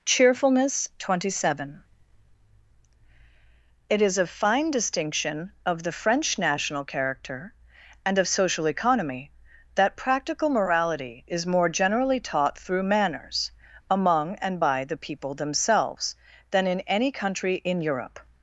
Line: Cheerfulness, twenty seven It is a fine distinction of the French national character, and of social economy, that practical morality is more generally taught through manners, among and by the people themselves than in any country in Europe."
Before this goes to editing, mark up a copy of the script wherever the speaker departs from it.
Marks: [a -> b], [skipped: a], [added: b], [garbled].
Cheerfulness, twenty seven It is a fine distinction of the French national character, and of social economy, that practical morality is more generally taught through manners, among and by the people themselves than in any country in Europe."